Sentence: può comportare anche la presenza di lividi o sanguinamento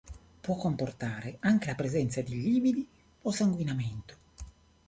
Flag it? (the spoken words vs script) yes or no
no